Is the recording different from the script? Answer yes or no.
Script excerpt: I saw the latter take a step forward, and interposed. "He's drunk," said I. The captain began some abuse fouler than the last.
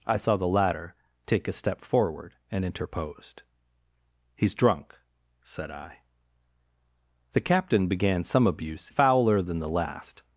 no